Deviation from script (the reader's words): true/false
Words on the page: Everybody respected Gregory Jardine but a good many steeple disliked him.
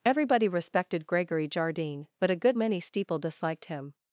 false